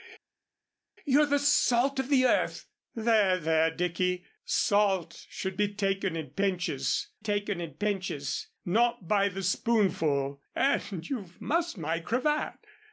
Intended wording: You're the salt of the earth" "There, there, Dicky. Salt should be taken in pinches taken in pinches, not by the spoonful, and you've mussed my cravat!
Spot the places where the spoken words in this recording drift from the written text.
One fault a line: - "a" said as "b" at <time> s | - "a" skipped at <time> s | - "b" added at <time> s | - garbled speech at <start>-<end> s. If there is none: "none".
none